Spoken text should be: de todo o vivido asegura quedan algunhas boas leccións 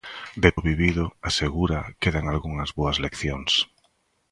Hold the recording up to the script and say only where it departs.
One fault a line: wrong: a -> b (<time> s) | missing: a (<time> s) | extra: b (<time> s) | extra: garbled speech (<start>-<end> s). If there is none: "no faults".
missing: todo (0.5 s)